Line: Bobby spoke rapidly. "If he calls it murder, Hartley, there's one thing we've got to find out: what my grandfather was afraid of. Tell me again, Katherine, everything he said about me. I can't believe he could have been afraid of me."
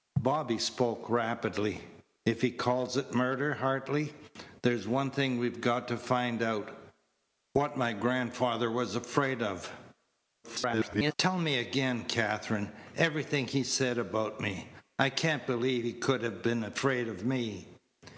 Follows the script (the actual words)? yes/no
no